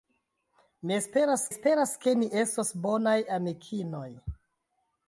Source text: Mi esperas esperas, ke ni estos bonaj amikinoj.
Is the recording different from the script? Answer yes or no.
no